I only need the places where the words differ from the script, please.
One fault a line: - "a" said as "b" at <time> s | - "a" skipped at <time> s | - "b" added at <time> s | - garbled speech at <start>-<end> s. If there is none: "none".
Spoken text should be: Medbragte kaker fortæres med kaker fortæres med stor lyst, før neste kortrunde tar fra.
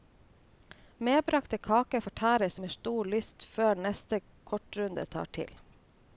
- "kaker fortæres med" skipped at 2.7 s
- "fra" said as "til" at 5.3 s